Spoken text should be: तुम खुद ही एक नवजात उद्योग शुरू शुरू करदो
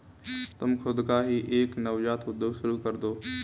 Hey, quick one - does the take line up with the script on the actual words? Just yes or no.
no